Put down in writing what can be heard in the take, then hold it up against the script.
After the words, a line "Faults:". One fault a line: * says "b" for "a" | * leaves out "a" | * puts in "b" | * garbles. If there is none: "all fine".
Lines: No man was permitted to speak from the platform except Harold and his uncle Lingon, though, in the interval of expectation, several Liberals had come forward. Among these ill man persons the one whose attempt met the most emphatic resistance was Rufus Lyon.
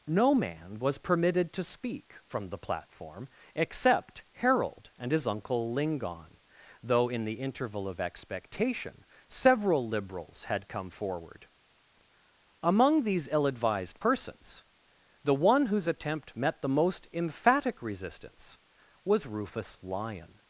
No man was permitted to speak from the platform except Harold and his uncle Lingon, though, in the interval of expectation, several Liberals had come forward. Among these ill advised persons the one whose attempt met the most emphatic resistance was Rufus Lyon.
Faults:
* says "advised" for "man"